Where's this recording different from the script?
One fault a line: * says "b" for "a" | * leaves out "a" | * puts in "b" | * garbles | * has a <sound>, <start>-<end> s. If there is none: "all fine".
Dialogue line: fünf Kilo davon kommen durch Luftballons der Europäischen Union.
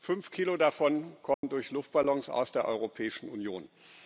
* has a dropout, 1.3-1.4 s
* puts in "aus"